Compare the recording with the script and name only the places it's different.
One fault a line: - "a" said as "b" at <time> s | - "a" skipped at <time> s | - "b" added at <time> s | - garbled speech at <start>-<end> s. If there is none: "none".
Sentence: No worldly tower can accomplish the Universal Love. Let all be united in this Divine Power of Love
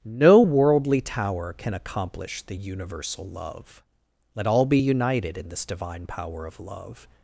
none